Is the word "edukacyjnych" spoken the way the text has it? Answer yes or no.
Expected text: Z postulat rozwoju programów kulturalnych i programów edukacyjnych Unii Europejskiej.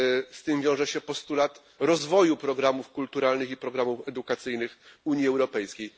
yes